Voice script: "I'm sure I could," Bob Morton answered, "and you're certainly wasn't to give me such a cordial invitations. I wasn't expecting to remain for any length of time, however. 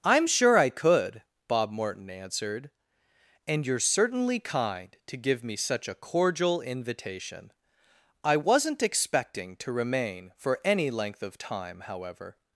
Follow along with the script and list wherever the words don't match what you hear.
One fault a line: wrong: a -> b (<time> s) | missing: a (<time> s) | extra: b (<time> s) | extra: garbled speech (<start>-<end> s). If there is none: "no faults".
wrong: wasn't -> kind (4.4 s)
wrong: invitations -> invitation (6.6 s)